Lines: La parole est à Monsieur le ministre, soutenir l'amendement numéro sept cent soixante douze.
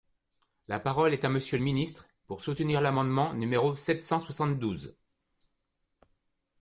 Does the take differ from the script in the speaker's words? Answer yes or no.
yes